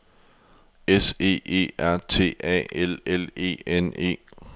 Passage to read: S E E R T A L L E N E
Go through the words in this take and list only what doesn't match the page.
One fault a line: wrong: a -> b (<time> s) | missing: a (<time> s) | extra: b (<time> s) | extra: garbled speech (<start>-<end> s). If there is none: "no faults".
no faults